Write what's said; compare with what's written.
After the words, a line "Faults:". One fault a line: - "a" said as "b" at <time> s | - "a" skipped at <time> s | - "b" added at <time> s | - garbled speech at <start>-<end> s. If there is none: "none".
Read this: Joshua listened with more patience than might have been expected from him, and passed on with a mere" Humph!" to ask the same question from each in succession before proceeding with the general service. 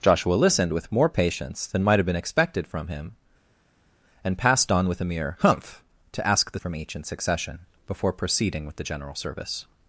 Joshua listened with more patience than might have been expected from him, and passed on with a mere" Humph!" to ask the from each in succession before proceeding with the general service.
Faults:
- "same question" skipped at 6.6 s